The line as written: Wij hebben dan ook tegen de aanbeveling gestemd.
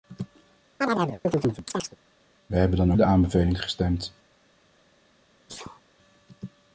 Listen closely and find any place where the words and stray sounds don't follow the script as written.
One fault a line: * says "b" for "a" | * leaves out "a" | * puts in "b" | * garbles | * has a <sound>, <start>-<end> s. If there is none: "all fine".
* has a chirp, 0.8-2.0 s
* leaves out "ook tegen"
* has a sneeze, 5.5-5.8 s